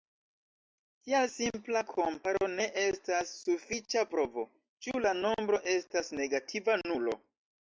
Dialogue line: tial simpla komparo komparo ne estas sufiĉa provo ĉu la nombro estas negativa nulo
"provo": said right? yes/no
yes